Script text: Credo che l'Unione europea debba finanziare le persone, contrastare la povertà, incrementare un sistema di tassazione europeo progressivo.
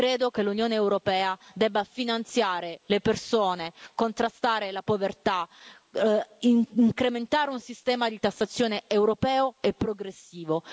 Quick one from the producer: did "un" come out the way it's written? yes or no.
yes